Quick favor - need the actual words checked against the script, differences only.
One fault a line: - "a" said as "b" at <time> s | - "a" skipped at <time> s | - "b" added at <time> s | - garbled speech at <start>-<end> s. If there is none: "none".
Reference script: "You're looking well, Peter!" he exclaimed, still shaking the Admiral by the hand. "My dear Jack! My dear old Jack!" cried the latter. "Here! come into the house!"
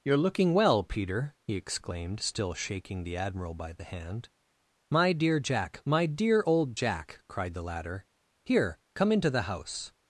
none